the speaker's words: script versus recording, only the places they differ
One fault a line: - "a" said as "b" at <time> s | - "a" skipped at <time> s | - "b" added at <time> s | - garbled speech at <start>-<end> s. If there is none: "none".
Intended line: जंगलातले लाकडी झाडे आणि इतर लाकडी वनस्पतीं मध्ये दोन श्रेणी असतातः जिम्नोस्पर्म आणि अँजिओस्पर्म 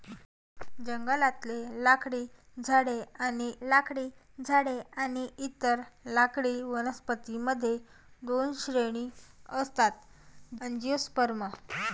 - "लाकडी झाडे आणि" added at 3.7 s
- "जिम्नोस्पर्म आणि" skipped at 10.6 s